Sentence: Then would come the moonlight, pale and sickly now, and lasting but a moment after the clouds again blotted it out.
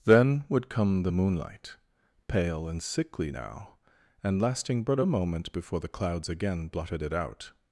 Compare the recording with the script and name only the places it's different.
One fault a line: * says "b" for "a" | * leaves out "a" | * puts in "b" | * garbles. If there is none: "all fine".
* says "before" for "after"